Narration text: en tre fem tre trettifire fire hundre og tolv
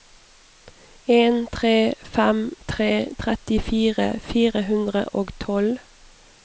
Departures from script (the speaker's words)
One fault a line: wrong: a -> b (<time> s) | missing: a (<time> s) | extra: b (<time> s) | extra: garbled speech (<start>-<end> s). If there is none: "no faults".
no faults